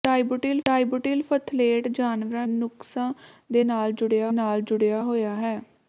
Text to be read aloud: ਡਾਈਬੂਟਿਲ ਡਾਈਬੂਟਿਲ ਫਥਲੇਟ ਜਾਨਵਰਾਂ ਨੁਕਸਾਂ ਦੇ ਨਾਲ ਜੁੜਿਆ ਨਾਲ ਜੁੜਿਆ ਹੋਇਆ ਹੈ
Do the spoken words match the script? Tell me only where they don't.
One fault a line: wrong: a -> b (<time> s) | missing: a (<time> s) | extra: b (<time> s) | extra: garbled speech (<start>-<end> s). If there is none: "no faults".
no faults